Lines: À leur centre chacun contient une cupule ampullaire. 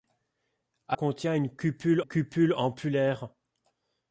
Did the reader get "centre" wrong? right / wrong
wrong